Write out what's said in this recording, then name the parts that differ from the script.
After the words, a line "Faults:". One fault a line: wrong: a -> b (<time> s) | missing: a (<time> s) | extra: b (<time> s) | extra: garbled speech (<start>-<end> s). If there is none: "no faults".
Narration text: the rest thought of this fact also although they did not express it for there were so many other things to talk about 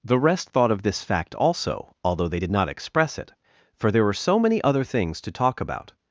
the rest thought of this fact also although they did not express it for there were so many other things to talk about
Faults:
no faults